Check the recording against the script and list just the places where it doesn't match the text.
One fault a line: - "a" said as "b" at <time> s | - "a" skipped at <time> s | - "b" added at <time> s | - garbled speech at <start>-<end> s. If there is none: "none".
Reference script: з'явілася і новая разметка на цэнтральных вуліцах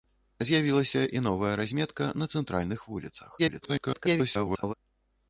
- garbled speech at 3.4-4.7 s